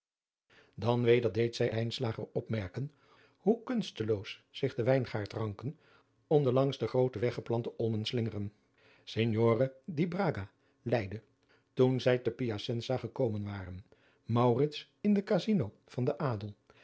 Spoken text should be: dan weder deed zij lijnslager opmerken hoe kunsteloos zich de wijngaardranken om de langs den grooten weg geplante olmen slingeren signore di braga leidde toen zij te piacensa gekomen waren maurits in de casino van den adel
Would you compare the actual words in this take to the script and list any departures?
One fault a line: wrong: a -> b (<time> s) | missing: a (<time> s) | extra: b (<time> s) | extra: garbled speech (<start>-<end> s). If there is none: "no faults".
no faults